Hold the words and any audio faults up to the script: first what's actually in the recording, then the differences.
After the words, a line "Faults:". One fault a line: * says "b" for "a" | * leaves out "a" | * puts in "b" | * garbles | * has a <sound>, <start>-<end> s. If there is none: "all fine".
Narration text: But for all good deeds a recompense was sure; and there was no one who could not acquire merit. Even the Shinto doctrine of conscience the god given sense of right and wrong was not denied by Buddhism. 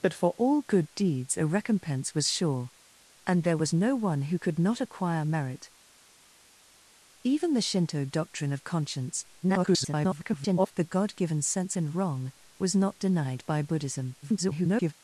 But for all good deeds a recompense was sure; and there was no one who could not acquire merit. Even the Shinto doctrine of conscience [garbled] the god given sense and wrong was not denied by Buddhism. [garbled]
Faults:
* garbles
* leaves out "of right"
* garbles